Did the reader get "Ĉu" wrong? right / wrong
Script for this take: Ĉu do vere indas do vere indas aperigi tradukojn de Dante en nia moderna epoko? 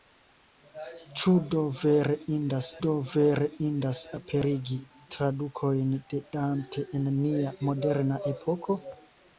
right